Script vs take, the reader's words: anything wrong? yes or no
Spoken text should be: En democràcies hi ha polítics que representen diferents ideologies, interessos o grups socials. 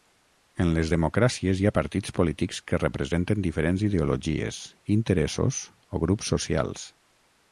yes